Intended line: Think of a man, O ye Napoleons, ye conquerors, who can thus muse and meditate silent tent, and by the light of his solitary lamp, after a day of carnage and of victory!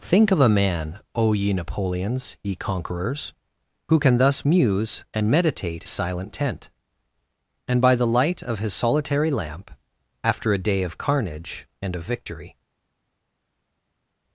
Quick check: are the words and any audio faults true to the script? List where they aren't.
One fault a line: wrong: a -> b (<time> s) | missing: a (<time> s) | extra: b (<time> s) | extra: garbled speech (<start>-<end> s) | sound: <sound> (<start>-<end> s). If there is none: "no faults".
no faults